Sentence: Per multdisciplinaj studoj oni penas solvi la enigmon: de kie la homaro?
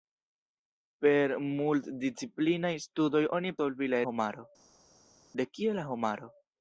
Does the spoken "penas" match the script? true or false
false